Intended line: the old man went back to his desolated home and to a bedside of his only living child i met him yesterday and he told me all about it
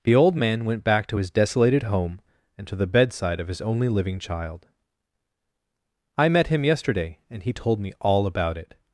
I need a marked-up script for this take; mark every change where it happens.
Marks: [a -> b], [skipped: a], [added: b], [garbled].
the old man went back to his desolated home and to [a -> the] bedside of his only living child i met him yesterday and he told me all about it